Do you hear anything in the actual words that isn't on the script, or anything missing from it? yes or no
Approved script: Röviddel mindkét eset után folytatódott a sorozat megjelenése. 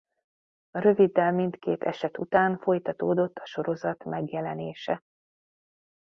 no